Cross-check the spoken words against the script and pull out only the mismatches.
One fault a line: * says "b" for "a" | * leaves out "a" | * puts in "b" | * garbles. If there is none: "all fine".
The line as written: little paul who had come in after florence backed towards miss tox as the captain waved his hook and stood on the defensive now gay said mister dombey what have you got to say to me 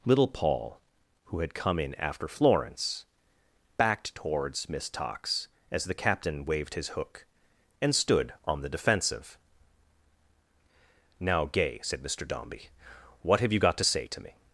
all fine